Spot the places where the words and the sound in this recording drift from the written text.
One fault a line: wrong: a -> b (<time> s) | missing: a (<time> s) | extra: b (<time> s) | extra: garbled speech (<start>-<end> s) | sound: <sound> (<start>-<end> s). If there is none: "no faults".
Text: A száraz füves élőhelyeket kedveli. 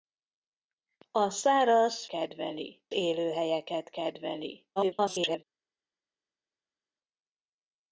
wrong: füves -> kedveli (2.1 s)
extra: garbled speech (4.8-5.4 s)